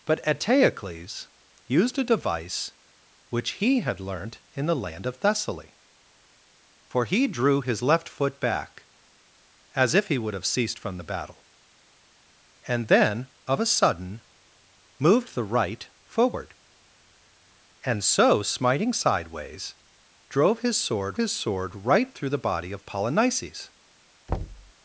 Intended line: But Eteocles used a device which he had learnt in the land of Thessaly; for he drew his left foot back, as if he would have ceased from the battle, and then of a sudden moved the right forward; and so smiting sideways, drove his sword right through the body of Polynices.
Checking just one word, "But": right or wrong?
right